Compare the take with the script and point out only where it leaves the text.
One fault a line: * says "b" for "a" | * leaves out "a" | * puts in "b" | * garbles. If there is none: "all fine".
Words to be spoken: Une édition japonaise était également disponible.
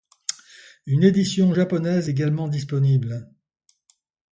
* leaves out "était"